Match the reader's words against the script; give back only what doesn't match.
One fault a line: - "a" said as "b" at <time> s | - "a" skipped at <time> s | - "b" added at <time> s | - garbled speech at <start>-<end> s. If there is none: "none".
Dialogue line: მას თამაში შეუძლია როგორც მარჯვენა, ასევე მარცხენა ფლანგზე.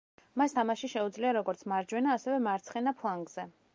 none